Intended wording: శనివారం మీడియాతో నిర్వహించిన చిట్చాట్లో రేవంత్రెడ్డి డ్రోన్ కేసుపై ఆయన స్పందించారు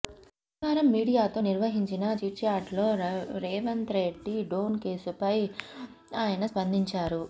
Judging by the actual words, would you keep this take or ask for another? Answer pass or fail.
pass